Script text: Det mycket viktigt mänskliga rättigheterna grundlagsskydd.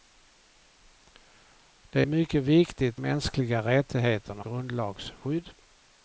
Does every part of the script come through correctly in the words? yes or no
yes